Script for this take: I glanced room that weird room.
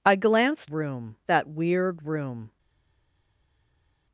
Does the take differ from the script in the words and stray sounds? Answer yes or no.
no